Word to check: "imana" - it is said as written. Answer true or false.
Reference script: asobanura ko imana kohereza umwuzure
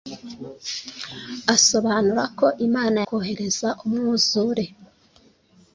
true